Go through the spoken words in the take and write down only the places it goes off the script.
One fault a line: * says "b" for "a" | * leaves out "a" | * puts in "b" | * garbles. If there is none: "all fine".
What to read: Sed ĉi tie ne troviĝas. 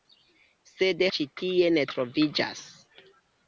all fine